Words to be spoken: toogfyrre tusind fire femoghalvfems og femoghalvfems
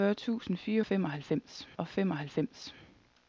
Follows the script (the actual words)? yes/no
yes